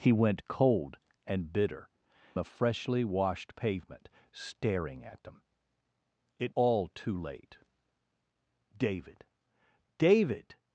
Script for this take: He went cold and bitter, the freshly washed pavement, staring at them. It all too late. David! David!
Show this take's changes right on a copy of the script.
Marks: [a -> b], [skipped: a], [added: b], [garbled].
He went cold and bitter, the freshly washed pavement, staring at them. It all too late. David! David!